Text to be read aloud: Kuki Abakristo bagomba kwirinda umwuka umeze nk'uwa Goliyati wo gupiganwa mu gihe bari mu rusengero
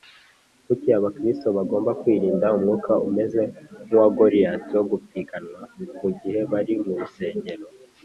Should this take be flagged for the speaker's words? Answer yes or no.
no